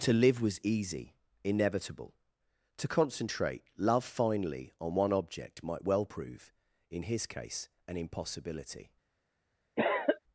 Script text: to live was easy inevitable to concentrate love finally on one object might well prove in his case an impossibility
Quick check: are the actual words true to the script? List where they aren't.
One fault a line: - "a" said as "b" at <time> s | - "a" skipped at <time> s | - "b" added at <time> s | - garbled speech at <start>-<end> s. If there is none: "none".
none